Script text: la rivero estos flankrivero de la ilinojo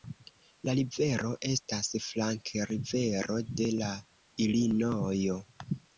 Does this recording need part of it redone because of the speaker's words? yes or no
yes